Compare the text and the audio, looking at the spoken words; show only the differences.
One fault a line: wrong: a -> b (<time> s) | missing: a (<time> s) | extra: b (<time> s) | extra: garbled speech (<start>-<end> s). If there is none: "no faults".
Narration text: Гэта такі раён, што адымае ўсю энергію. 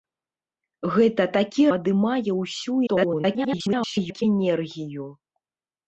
missing: раён што (1.6 s)
extra: garbled speech (2.9-4.2 s)